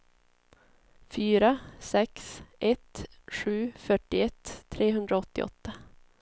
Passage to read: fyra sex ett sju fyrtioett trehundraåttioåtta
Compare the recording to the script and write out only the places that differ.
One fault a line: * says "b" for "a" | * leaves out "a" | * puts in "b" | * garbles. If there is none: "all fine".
all fine